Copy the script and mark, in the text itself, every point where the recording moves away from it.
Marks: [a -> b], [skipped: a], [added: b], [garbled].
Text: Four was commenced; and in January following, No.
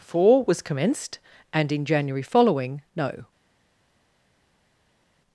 Four was commenced; and in January following, No.